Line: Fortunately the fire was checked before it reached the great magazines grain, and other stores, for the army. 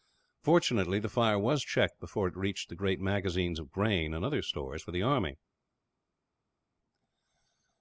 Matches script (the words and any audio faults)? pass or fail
fail